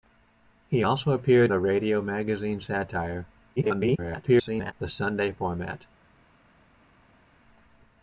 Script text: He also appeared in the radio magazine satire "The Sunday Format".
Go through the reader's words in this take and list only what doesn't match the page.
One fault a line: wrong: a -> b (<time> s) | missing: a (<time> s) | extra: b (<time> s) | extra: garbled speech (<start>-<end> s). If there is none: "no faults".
missing: in (1.5 s)
extra: garbled speech (3.6-4.7 s)